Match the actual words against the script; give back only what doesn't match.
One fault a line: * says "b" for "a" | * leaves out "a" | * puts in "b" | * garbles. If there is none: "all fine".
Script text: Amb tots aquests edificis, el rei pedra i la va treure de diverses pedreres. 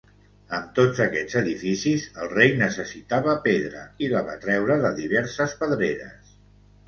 * puts in "necessitava"